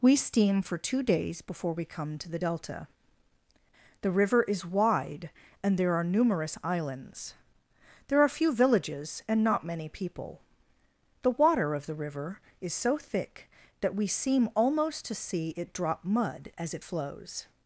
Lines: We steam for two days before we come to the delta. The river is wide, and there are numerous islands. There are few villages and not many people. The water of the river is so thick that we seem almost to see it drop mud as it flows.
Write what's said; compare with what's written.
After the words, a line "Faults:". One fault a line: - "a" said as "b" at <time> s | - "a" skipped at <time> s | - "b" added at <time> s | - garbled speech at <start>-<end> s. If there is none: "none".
We steam for two days before we come to the delta. The river is wide, and there are numerous islands. There are few villages and not many people. The water of the river is so thick that we seem almost to see it drop mud as it flows.
Faults:
none